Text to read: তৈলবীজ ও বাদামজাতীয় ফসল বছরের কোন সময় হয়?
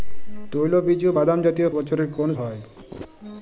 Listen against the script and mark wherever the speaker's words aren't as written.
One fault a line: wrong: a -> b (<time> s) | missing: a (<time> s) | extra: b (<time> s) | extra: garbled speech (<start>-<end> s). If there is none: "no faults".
missing: ফসল (1.7 s)
missing: সময় (2.3 s)